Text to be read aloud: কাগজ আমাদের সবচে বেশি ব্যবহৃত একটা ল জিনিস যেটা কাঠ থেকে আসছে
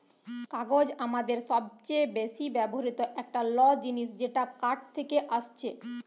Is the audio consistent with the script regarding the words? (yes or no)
yes